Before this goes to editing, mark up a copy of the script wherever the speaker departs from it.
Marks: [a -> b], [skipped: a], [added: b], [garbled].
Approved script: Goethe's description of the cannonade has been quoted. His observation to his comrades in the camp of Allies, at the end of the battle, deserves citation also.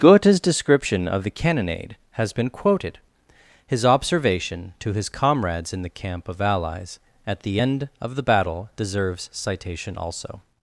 Goethe's description of the cannonade has been quoted. His observation to his comrades in the camp of Allies, at the end of the battle, deserves citation also.